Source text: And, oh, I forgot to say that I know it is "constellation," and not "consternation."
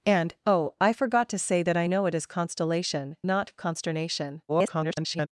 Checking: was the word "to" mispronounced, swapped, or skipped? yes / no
no